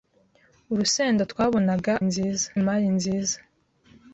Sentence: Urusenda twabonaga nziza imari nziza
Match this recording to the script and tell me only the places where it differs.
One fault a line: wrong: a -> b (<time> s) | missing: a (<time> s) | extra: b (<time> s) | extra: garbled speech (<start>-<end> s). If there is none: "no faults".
no faults